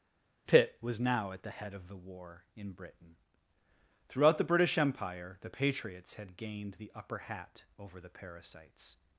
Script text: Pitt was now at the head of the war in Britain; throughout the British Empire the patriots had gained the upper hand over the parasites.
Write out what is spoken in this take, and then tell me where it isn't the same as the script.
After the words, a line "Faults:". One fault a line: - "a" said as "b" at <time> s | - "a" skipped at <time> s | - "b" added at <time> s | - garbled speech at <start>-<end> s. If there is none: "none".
Pitt was now at the head of the war in Britain; throughout the British Empire the patriots had gained the upper hat over the parasites.
Faults:
- "hand" said as "hat" at 7.2 s